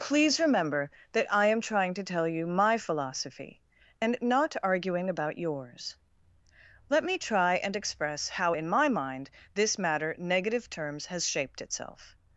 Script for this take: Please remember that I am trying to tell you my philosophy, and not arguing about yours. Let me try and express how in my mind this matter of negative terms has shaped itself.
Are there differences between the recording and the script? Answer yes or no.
yes